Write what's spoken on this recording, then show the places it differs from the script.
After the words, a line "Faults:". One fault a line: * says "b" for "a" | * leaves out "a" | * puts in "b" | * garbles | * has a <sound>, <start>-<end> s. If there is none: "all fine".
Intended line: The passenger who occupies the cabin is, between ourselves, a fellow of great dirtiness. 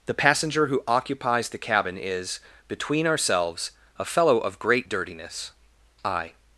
The passenger who occupies the cabin is, between ourselves, a fellow of great dirtiness. I
Faults:
* puts in "I"